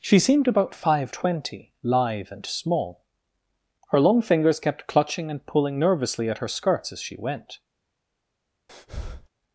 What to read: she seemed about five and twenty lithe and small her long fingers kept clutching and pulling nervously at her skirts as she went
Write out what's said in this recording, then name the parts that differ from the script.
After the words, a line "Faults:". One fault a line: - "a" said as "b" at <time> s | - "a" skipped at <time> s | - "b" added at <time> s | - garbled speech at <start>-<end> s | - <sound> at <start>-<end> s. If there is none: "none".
she seemed about five twenty lithe and small her long fingers kept clutching and pulling nervously at her skirts as she went
Faults:
- "and" skipped at 1.1 s
- breath at 8.7-9.3 s